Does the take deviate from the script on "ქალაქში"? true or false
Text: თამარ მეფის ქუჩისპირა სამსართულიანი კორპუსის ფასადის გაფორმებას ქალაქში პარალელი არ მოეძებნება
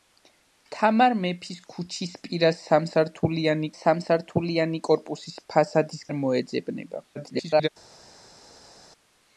true